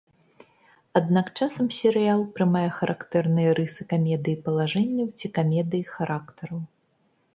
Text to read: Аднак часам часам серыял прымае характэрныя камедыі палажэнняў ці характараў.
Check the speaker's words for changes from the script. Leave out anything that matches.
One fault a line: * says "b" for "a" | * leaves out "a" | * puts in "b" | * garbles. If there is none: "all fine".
* leaves out "часам"
* puts in "рысы"
* puts in "камедыі"